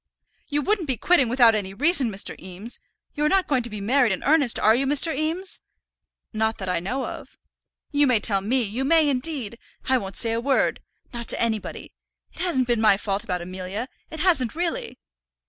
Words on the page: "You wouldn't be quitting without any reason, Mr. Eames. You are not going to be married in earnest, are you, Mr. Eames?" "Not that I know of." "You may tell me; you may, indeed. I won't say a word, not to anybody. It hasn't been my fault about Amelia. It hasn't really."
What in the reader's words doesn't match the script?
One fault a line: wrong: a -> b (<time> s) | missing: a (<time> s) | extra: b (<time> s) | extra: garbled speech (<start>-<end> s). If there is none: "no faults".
no faults